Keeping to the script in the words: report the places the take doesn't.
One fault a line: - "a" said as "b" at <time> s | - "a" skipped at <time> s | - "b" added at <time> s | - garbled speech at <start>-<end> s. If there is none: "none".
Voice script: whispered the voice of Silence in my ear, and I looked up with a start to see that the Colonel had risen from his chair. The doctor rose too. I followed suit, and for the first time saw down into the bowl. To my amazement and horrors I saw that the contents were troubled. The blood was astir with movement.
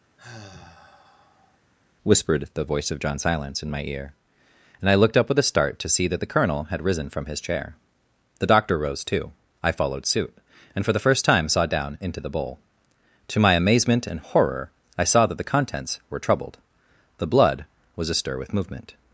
- "John" added at 3.0 s
- "horrors" said as "horror" at 14.2 s